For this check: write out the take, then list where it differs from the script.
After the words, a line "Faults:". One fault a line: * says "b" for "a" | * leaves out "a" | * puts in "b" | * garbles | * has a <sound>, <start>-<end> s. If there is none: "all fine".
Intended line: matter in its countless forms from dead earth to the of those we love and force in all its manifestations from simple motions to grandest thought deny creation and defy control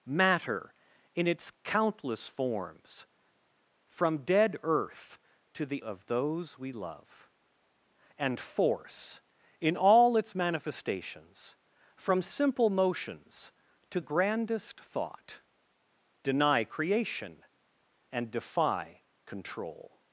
matter in its countless forms from dead earth to the of those we love and force in all its manifestations from simple motions to grandest thought deny creation and defy control
Faults:
all fine